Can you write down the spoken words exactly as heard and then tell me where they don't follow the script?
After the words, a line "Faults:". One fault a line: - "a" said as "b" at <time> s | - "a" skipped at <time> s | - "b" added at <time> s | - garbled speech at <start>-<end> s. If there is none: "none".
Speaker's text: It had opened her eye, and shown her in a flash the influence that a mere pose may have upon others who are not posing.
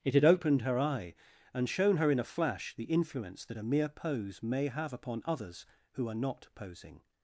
It had opened her eye, and shown her in a flash the influence that a mere pose may have upon others who are not posing.
Faults:
none